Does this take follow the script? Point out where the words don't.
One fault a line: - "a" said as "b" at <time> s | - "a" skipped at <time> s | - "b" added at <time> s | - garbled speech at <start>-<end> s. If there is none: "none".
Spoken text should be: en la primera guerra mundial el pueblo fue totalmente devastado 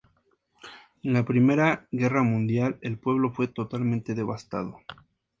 none